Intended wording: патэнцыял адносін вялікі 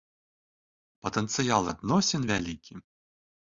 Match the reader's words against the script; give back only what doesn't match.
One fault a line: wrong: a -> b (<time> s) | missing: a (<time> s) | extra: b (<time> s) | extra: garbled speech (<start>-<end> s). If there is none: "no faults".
no faults